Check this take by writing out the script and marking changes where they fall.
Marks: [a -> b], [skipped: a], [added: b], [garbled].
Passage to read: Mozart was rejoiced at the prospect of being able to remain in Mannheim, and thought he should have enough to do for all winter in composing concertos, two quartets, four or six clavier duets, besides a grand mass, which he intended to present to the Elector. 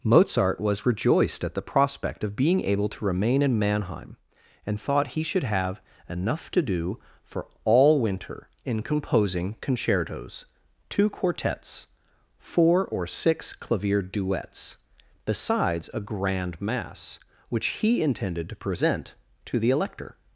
Mozart was rejoiced at the prospect of being able to remain in Mannheim, and thought he should have enough to do for all winter in composing concertos, two quartets, four or six clavier duets, besides a grand mass, which he intended to present to the Elector.